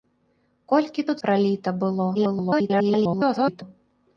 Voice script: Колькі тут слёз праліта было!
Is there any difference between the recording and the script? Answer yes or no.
yes